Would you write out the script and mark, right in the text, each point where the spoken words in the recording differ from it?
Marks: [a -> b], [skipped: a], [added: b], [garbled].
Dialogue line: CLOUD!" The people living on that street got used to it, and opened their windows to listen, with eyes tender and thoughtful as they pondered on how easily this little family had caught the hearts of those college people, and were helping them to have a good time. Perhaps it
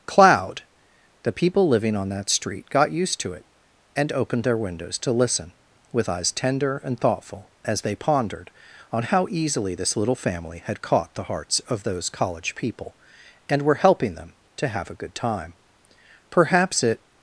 CLOUD!" The people living on that street got used to it, and opened their windows to listen, with eyes tender and thoughtful as they pondered on how easily this little family had caught the hearts of those college people, and were helping them to have a good time. Perhaps it